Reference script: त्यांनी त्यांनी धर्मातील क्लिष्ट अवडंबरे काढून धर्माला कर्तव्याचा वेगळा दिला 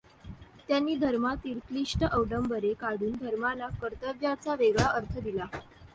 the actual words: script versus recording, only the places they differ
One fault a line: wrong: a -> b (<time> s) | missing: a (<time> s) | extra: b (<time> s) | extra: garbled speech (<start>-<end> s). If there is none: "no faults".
missing: त्यांनी (0.9 s)
extra: अर्थ (4.9 s)